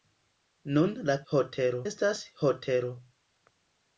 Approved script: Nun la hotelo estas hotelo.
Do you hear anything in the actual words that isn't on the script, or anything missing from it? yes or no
no